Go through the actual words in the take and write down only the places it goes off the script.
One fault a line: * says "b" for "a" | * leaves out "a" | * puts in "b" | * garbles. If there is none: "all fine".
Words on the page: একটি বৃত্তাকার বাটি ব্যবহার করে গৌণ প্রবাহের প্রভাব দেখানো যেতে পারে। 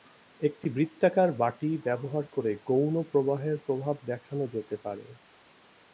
all fine